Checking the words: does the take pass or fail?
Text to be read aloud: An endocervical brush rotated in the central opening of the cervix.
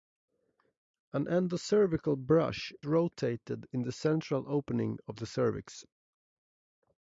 pass